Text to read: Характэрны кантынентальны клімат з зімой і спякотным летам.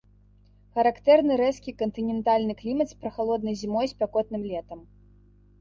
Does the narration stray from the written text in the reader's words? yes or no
yes